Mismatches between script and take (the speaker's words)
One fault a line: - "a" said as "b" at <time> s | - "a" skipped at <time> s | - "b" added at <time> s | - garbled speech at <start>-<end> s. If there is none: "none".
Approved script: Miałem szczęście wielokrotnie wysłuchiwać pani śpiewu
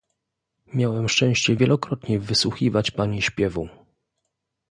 none